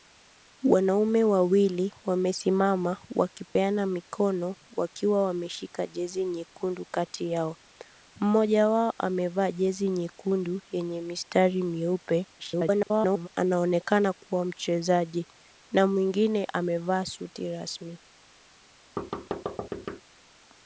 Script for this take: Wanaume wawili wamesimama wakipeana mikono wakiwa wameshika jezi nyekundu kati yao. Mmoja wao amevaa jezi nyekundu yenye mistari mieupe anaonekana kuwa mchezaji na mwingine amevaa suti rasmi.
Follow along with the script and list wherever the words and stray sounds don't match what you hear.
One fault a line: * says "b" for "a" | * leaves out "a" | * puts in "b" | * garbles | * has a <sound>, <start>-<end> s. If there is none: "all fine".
* has a dropout, 3.5-3.6 s
* garbles
* has a thud, 19.0-20.0 s